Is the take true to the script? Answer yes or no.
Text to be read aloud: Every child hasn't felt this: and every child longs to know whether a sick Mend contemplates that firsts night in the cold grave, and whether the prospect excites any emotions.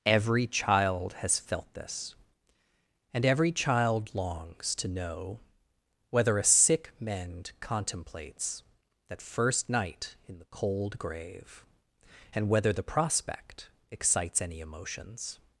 no